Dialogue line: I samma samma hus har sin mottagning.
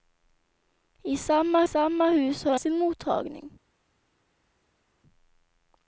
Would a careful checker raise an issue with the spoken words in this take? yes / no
no